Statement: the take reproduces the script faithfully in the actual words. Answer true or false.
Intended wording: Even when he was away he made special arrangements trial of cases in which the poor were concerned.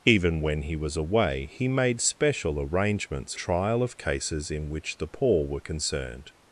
true